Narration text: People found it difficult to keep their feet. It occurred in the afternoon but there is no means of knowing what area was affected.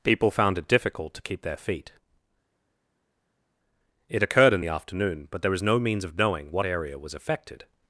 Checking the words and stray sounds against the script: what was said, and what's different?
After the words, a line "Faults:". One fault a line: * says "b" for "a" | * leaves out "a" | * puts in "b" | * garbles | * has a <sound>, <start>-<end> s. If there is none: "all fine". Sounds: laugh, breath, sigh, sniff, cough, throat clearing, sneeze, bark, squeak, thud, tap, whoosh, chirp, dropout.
People found it difficult to keep their feet. It occurred in the afternoon but there was no means of knowing what area was affected.
Faults:
* says "was" for "is"